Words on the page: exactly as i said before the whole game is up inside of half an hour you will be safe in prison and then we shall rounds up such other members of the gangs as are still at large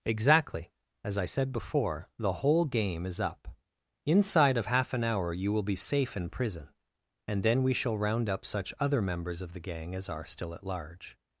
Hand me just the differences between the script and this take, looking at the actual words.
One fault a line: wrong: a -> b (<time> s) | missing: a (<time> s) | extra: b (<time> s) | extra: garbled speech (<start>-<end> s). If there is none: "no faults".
wrong: rounds -> round (8.0 s)
wrong: gangs -> gang (9.6 s)